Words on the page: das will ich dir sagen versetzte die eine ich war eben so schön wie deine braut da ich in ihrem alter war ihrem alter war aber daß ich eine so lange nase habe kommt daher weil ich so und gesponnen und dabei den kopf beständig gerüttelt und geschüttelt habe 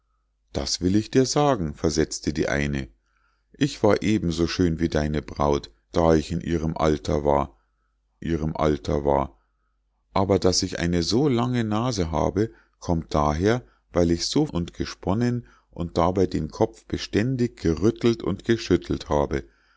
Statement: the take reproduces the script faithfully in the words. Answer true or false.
true